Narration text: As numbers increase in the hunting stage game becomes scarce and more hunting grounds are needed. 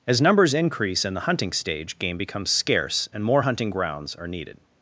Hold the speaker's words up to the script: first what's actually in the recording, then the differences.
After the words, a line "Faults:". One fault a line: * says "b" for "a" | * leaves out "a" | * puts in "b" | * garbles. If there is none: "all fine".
As numbers increase in the hunting stage game becomes scarce and more hunting grounds are needed.
Faults:
all fine